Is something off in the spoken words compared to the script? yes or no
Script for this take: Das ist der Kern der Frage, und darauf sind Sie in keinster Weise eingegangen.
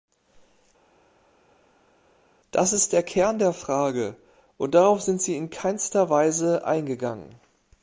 no